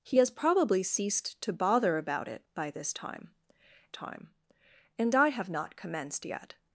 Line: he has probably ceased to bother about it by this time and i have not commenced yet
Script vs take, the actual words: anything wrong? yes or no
yes